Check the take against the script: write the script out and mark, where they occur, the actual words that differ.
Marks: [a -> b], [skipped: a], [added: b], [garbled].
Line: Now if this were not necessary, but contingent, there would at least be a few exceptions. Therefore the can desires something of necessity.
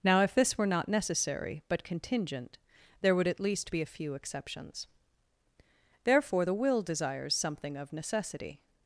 Now if this were not necessary, but contingent, there would at least be a few exceptions. Therefore the [can -> will] desires something of necessity.